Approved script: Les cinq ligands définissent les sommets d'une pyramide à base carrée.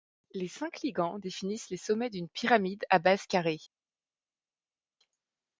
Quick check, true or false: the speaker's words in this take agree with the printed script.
true